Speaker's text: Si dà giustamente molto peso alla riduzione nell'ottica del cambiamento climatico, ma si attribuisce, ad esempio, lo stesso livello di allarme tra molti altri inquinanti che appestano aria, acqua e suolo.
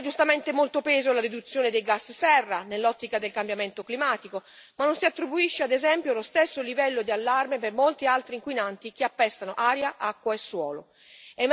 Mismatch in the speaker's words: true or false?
true